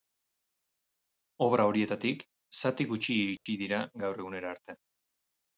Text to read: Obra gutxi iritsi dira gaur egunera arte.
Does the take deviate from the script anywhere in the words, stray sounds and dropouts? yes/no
yes